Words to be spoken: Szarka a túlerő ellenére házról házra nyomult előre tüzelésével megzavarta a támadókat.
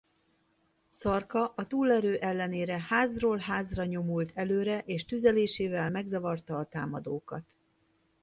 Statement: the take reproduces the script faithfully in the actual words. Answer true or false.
false